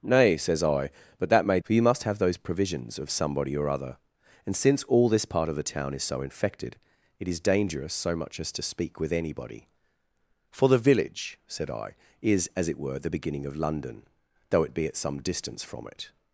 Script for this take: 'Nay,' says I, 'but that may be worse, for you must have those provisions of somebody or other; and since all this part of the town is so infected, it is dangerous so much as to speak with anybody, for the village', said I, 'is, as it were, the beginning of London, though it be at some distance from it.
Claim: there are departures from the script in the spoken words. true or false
true